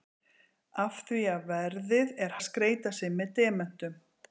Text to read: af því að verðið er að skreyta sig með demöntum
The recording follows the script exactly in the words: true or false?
true